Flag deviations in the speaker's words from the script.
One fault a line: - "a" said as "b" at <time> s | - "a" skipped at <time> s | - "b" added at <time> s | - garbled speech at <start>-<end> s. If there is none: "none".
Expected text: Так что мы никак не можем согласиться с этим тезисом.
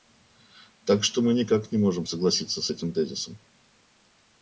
none